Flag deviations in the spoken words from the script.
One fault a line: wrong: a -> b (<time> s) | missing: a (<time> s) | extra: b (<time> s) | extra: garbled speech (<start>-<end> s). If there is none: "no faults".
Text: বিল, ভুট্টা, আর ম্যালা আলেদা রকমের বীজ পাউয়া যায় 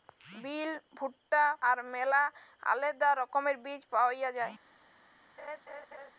no faults